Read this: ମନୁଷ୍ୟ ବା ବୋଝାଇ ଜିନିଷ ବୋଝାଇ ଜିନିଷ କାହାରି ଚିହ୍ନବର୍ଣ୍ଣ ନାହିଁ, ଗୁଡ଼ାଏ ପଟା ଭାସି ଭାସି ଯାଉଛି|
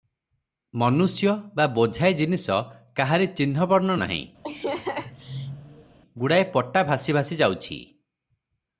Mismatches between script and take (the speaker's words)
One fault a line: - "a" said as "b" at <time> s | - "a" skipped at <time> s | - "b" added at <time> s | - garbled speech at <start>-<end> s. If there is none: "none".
- "ବୋଝାଇ ଜିନିଷ" skipped at 2.6 s